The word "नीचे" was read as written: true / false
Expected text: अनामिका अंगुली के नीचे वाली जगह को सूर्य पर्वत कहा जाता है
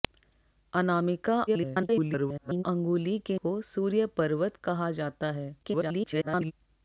false